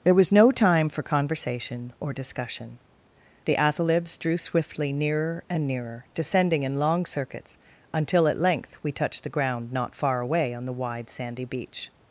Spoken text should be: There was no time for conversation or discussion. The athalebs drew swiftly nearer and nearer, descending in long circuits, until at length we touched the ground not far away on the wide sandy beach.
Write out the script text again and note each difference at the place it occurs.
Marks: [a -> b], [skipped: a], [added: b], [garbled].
There was no time for conversation or discussion. The athalebs drew swiftly nearer and nearer, descending in long circuits, until at length we touched the ground not far away on the wide sandy beach.